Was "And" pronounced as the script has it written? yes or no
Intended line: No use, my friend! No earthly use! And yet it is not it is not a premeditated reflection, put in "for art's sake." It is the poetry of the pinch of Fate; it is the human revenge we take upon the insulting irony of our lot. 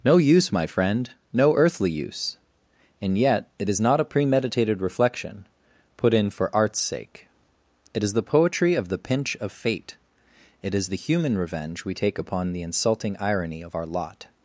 yes